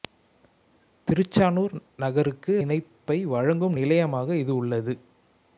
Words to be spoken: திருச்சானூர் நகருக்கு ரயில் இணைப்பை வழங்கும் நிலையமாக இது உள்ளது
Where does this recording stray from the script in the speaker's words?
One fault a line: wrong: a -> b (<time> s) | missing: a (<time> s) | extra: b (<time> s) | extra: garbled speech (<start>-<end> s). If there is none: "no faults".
missing: ரயில் (2.5 s)